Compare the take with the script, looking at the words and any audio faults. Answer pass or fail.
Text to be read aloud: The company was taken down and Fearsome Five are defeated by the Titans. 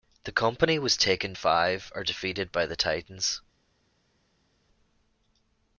fail